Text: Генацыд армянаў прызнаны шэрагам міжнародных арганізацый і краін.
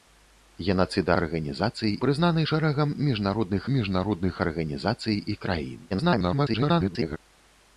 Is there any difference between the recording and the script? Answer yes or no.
yes